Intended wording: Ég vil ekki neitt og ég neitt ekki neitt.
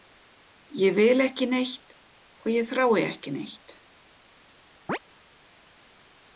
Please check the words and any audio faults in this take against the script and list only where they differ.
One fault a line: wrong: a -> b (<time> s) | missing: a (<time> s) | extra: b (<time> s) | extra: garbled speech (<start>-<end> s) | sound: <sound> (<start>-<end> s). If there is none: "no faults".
wrong: neitt -> þrái (2.7 s)
sound: chirp (4.9-5.0 s)